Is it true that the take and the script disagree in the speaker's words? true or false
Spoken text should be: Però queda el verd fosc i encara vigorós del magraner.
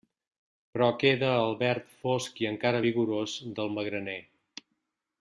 false